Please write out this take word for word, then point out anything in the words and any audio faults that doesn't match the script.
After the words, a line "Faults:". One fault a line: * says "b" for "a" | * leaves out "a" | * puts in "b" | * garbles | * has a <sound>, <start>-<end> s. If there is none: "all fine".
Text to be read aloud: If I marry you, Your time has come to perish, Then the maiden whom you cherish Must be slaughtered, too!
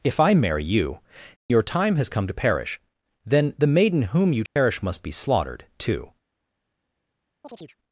If I marry you, Your time has come to perish, Then the maiden whom you cherish Must be slaughtered, too!
Faults:
* has a dropout, 4.5-4.6 s
* has a chirp, 7.4-7.8 s